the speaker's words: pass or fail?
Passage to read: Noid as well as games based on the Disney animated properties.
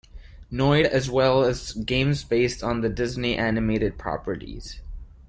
pass